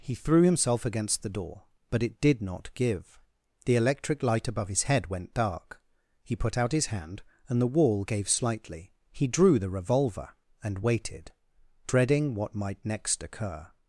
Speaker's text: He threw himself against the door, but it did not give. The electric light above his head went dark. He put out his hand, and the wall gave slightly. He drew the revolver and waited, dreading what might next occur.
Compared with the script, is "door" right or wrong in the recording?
right